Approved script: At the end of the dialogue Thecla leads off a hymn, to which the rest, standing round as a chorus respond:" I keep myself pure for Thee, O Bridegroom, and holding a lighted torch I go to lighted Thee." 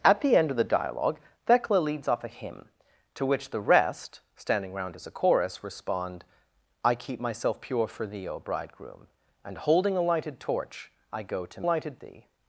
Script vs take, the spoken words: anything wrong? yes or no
no